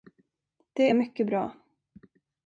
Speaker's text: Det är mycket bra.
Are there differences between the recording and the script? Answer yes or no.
no